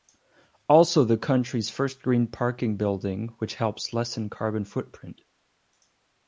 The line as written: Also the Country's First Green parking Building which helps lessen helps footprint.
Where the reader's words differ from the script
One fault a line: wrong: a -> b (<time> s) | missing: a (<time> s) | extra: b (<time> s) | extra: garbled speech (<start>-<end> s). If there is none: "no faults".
wrong: helps -> carbon (4.3 s)